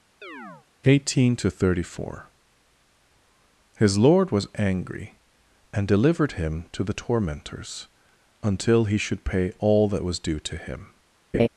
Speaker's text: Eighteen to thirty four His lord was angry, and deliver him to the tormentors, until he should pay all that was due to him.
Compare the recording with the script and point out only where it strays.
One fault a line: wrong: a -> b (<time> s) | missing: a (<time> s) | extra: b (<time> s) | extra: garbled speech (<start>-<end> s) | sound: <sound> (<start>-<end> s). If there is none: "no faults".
sound: chirp (0.2-0.7 s)
wrong: deliver -> delivered (5.9 s)
sound: laugh (11.3-11.5 s)